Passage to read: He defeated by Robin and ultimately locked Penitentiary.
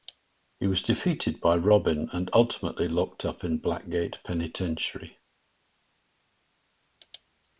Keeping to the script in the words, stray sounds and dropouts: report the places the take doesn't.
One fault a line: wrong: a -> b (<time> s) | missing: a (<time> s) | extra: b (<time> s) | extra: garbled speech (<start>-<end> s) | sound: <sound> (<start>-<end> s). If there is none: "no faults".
extra: was (0.7 s)
extra: up in Blackgate (3.2 s)